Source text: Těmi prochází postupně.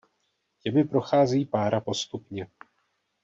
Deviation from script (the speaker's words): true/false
true